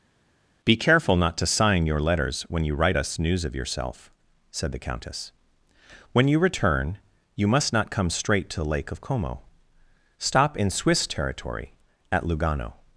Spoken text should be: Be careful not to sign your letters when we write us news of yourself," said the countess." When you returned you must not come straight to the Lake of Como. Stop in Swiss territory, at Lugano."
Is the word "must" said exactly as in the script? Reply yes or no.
yes